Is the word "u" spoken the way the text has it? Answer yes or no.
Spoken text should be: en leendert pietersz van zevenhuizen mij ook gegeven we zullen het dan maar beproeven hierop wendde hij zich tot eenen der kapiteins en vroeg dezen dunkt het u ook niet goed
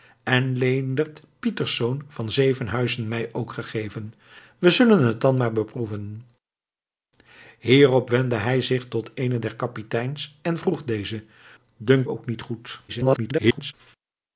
no